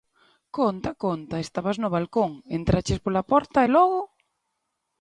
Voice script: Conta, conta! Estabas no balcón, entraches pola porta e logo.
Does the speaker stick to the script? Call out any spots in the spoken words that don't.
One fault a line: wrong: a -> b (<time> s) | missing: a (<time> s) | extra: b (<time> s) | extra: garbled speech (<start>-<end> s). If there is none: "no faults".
no faults